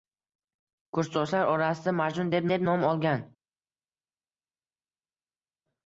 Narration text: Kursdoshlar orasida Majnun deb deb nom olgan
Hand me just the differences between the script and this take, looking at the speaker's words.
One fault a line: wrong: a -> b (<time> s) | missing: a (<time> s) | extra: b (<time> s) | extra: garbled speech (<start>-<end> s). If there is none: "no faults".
no faults